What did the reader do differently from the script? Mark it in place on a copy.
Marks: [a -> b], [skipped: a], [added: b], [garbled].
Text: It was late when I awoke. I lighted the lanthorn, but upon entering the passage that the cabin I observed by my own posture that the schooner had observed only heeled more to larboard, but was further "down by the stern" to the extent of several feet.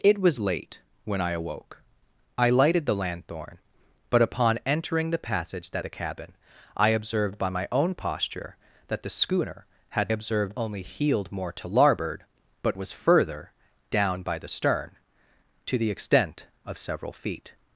It was late when I awoke. I lighted the lanthorn, but upon entering the passage that the cabin I observed by my own posture that the schooner had observed only heeled more to larboard, but was further "down by the stern" to the extent of several feet.